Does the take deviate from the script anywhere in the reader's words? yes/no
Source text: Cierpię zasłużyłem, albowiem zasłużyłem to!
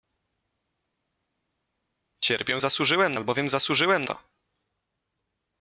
no